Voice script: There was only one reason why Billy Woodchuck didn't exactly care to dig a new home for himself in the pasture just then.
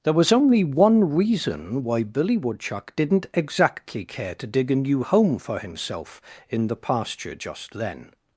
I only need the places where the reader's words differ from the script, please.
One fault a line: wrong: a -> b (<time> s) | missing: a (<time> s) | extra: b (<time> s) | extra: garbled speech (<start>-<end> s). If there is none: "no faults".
no faults